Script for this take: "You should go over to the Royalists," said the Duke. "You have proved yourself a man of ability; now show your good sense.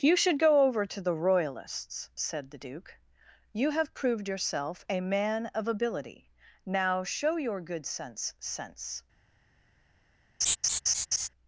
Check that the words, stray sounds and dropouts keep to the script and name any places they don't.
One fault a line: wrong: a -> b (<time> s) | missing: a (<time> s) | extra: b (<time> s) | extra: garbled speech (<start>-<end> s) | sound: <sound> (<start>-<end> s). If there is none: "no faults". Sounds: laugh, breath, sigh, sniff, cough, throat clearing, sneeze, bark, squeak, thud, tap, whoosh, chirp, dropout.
extra: sense (8.4 s)
sound: laugh (10.4-11.3 s)